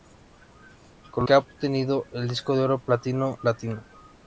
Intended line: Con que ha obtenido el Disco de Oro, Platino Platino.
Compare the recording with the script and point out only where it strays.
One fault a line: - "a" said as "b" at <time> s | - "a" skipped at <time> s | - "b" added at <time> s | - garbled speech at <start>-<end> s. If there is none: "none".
none